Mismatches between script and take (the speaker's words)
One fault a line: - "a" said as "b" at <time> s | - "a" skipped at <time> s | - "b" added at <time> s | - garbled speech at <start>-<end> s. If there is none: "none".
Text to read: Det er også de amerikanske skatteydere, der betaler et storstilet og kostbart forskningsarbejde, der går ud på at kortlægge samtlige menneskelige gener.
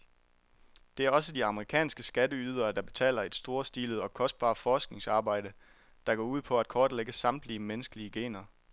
none